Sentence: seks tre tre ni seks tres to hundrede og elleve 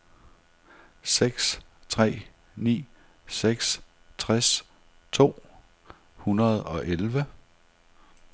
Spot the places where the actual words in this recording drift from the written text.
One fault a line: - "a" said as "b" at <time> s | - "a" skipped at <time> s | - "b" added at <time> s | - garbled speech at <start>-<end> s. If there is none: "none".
- "tre" skipped at 2.3 s